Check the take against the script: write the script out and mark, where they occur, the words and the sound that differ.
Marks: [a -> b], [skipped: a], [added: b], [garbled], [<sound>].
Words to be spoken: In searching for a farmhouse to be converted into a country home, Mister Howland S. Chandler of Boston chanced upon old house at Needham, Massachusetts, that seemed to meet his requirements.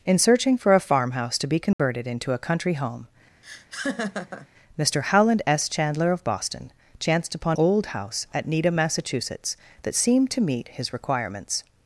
In searching for a farmhouse to be converted [dropout] into a country home, [laugh] Mister Howland S. Chandler of Boston chanced upon old house at Needham, Massachusetts, that seemed to meet his requirements.